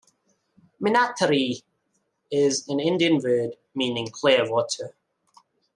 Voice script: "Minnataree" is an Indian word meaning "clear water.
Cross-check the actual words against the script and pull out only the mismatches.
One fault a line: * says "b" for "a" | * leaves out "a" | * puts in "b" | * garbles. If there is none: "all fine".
all fine